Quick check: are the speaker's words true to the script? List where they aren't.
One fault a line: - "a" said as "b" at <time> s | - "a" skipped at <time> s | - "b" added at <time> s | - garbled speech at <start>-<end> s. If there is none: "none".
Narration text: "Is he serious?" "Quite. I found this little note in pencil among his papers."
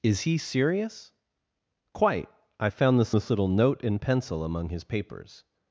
- "this" added at 3.1 s